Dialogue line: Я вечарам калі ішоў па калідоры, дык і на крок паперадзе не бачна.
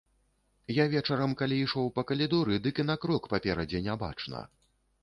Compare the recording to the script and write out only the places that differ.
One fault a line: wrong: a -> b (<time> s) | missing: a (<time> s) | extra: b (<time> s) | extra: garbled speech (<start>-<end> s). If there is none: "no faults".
no faults